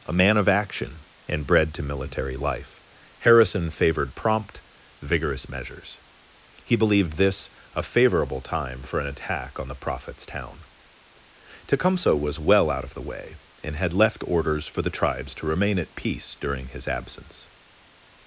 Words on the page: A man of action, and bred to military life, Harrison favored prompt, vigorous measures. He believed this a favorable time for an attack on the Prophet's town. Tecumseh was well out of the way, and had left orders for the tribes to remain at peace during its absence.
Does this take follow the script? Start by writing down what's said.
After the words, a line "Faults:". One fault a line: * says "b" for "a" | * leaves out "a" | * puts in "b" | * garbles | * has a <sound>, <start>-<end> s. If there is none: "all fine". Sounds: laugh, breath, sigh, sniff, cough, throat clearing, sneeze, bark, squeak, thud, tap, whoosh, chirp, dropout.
A man of action, and bred to military life, Harrison favored prompt, vigorous measures. He believed this a favorable time for an attack on the Prophet's town. Tecumseh was well out of the way, and had left orders for the tribes to remain at peace during his absence.
Faults:
* says "his" for "its"